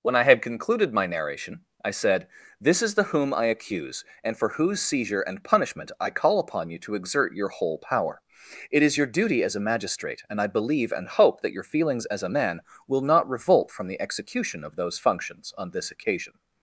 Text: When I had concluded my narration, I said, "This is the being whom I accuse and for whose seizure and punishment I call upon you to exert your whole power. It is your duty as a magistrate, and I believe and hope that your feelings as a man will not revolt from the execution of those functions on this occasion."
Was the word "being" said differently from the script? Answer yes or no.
yes